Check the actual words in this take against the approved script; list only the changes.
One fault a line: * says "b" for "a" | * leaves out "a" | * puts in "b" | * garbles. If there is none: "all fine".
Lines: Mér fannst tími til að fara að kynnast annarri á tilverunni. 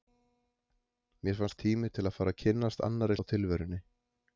all fine